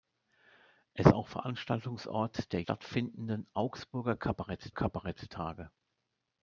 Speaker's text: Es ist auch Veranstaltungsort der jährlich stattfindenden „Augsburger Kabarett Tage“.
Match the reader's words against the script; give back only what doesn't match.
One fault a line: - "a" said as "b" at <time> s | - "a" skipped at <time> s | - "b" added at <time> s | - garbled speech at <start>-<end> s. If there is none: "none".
- "ist" skipped at 1.1 s
- "jährlich" skipped at 2.6 s
- "Kabarett" added at 4.7 s